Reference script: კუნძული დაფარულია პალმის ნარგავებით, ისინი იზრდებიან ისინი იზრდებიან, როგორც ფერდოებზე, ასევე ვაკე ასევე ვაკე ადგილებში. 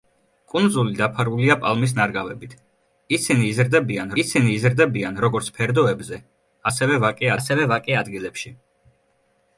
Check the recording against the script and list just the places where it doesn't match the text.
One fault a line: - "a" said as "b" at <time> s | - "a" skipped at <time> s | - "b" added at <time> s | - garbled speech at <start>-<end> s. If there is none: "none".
none